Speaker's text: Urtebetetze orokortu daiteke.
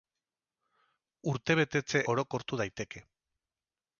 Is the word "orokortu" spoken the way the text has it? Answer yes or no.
yes